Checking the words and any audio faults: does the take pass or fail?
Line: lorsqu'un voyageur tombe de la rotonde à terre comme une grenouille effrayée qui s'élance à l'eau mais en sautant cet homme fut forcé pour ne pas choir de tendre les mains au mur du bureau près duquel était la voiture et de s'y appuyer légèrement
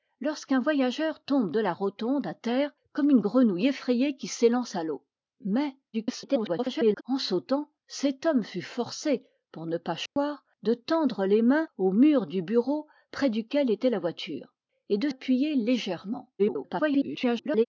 fail